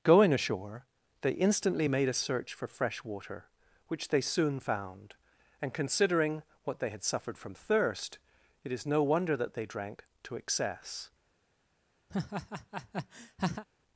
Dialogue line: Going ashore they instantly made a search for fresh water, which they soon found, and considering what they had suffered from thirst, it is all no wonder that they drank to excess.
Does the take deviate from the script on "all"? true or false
true